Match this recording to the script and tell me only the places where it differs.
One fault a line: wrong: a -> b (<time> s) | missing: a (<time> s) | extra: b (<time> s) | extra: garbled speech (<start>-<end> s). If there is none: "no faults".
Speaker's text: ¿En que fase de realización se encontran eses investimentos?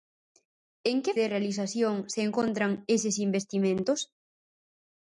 missing: fase (1.1 s)